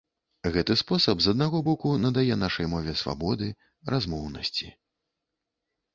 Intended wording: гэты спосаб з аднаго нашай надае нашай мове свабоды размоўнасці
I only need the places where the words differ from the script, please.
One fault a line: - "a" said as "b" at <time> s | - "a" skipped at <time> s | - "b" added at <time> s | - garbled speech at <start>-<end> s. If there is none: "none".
- "нашай" said as "боку" at 1.7 s